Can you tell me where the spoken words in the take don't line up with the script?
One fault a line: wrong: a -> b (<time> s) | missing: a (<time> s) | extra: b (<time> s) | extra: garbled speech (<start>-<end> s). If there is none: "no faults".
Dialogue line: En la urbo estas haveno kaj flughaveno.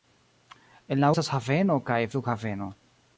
missing: urbo (1.1 s)